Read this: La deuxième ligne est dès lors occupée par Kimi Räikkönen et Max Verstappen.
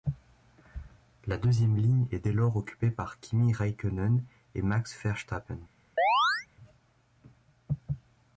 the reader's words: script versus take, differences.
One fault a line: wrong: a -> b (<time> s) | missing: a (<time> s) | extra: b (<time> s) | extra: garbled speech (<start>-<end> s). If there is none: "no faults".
no faults